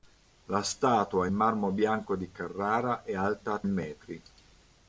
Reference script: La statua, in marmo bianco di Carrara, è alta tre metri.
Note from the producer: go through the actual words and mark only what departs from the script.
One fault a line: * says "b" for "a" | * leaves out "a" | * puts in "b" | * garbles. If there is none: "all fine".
* leaves out "tre"